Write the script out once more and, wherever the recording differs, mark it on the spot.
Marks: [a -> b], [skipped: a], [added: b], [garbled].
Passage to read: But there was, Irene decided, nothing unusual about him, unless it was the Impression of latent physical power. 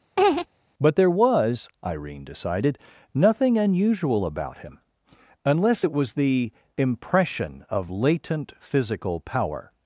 But there was, Irene decided, nothing unusual about him, unless it was the Impression of latent physical power.